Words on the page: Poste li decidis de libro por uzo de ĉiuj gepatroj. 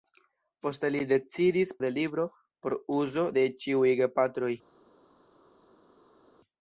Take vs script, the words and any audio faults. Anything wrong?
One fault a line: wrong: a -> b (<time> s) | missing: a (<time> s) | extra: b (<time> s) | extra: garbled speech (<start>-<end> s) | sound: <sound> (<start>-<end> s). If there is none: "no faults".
no faults